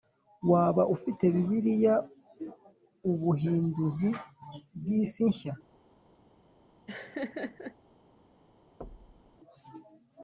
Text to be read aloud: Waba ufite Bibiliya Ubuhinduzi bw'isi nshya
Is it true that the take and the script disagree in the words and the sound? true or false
true